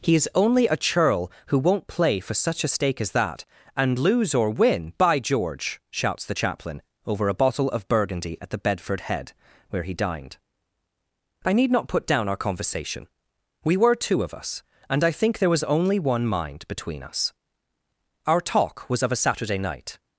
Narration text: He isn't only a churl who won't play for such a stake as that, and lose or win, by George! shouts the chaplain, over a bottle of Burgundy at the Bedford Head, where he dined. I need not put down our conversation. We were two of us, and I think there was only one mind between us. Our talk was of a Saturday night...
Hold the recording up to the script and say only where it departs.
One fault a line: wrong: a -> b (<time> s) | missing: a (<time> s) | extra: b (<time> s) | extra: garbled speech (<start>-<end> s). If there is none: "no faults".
wrong: isn't -> is (0.1 s)